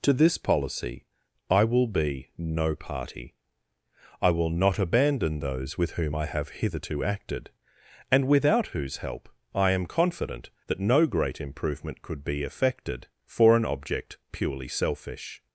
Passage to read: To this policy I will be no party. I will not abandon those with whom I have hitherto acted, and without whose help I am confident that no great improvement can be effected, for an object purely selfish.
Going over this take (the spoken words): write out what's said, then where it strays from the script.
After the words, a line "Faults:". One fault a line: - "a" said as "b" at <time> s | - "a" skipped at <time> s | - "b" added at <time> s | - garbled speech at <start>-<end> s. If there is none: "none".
To this policy I will be no party. I will not abandon those with whom I have hitherto acted, and without whose help I am confident that no great improvement could be effected, for an object purely selfish.
Faults:
- "can" said as "could" at 12.0 s